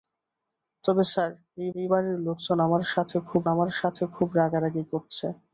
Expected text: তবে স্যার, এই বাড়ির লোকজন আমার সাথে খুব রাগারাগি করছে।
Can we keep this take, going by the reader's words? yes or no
no